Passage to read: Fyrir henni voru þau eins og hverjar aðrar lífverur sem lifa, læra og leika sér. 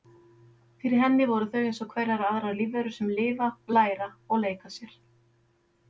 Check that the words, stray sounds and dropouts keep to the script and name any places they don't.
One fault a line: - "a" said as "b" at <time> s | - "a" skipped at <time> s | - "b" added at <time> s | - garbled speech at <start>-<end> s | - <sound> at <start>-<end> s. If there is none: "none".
none